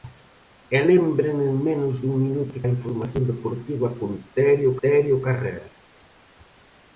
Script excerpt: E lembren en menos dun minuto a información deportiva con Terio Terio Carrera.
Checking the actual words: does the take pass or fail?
pass